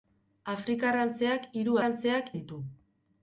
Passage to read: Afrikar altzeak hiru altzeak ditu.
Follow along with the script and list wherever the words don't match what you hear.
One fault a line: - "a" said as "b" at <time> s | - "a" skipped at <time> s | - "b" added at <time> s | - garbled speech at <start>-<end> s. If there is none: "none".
none